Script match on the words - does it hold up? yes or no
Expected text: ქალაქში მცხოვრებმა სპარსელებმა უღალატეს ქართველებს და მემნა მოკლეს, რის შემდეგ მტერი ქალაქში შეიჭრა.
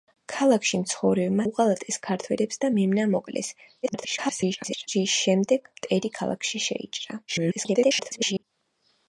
no